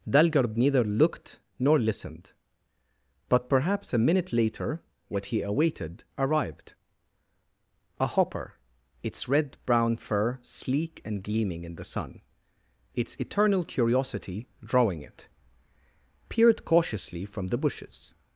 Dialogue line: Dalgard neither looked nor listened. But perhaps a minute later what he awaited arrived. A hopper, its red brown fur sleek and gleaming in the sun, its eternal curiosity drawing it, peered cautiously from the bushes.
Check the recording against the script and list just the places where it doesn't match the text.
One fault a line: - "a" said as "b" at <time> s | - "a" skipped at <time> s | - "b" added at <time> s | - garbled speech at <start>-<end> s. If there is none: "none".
none